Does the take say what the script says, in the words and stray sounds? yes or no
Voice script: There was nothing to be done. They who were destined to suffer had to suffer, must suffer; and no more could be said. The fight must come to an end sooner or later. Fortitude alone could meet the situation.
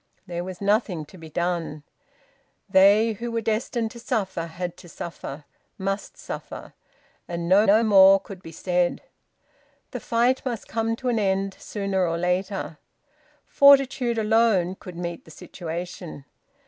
no